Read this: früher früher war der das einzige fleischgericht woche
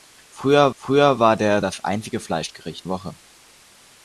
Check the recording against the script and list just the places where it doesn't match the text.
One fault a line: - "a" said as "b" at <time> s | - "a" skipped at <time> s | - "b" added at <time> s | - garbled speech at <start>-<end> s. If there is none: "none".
none